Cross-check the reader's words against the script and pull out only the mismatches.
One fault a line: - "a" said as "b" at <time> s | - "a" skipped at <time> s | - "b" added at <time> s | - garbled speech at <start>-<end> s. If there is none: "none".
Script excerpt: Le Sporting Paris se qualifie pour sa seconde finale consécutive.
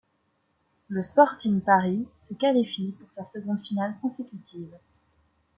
none